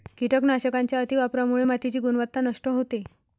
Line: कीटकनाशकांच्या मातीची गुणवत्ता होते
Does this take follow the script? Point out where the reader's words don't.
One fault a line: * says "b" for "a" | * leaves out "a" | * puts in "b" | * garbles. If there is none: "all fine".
* puts in "अतिवापरामुळे"
* puts in "नष्ट"